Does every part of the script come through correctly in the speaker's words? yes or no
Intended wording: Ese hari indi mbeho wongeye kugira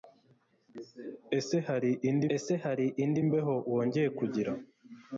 no